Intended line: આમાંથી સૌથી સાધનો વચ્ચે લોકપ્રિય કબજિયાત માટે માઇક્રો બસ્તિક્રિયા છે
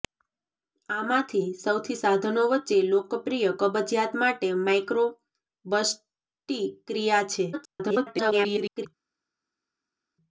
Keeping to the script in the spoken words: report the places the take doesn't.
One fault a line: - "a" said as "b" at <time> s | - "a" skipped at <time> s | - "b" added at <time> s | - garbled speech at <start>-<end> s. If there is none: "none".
- garbled speech at 7.5-8.9 s